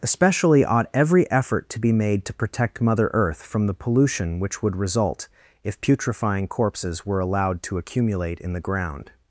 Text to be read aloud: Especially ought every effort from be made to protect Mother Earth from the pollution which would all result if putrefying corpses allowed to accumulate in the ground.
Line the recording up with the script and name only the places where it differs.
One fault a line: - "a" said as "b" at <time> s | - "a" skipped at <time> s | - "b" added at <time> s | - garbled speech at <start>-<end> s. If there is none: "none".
- "from" said as "to" at 1.7 s
- "all" skipped at 4.8 s
- "were" added at 7.0 s